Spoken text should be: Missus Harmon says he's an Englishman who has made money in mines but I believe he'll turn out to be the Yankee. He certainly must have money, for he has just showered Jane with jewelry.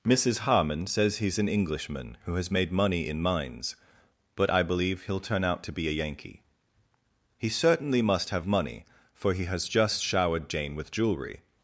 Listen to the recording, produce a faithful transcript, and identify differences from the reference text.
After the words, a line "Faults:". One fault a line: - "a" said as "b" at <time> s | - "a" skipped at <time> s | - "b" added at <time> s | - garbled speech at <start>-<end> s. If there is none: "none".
Missus Harmon says he's an Englishman who has made money in mines but I believe he'll turn out to be a Yankee. He certainly must have money, for he has just showered Jane with jewelry.
Faults:
- "the" said as "a" at 5.9 s